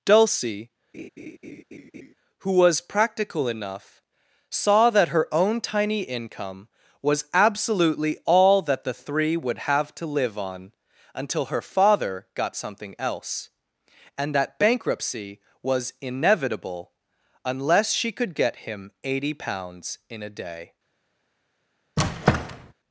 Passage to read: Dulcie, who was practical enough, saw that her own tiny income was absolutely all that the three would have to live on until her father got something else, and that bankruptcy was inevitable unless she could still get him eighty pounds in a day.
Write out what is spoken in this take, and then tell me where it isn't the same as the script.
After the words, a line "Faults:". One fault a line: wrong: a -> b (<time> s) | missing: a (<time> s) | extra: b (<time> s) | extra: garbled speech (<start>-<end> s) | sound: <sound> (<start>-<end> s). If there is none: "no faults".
Dulcie, who was practical enough, saw that her own tiny income was absolutely all that the three would have to live on until her father got something else, and that bankruptcy was inevitable unless she could get him eighty pounds in a day.
Faults:
sound: laugh (0.9-2.1 s)
missing: still (18.3 s)
sound: squeak (22.0-22.7 s)